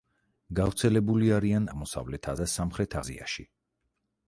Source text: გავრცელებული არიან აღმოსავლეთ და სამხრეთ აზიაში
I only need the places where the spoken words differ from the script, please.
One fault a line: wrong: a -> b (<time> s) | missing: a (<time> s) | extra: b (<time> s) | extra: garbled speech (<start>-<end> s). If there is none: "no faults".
no faults